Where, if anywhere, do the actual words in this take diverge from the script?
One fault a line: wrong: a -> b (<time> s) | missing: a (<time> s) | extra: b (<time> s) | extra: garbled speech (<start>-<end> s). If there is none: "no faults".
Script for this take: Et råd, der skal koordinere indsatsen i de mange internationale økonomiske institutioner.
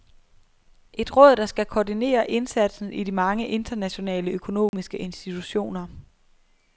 no faults